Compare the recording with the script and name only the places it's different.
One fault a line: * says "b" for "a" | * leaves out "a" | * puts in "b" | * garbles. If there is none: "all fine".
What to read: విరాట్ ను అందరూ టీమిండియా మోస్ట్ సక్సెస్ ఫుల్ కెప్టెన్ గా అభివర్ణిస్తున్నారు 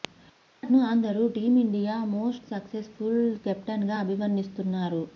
all fine